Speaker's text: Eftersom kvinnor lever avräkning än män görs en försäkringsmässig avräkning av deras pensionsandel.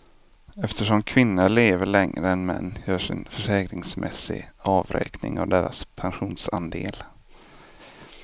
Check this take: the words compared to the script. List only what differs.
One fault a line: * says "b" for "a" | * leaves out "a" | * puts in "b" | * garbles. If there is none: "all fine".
* says "längre" for "avräkning"